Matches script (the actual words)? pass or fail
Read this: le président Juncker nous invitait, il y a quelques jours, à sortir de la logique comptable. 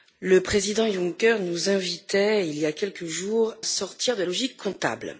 fail